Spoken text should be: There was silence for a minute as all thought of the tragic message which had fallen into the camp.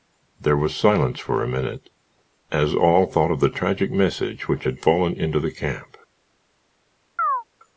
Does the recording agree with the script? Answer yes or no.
yes